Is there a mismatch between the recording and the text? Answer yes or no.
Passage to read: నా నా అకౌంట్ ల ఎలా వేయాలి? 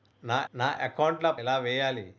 no